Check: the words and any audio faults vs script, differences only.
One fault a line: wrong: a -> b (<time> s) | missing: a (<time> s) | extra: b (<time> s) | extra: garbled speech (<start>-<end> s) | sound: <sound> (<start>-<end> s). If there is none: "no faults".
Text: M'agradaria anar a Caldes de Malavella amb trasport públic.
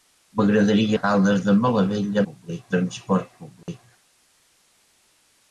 missing: anar (0.9 s)
wrong: amb -> públic (2.3 s)
sound: dropout (3.6-3.7 s)